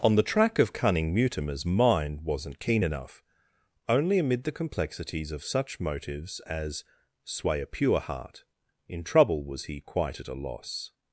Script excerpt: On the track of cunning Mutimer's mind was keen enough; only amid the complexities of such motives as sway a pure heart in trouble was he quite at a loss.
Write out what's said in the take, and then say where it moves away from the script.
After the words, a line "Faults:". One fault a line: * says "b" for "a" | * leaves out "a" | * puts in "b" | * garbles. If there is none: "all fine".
On the track of cunning Mutimer's mind wasn't keen enough; only amid the complexities of such motives as sway a pure heart in trouble was he quite at a loss.
Faults:
* says "wasn't" for "was"